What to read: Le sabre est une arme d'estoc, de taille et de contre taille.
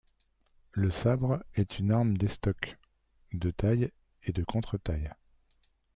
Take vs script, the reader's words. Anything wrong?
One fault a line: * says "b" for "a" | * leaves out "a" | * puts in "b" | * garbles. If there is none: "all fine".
all fine